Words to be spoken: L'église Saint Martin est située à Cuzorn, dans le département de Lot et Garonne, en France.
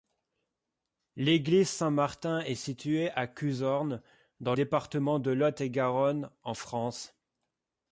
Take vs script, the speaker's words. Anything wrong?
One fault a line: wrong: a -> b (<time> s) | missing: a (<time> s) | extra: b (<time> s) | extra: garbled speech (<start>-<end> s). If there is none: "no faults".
missing: le (4.5 s)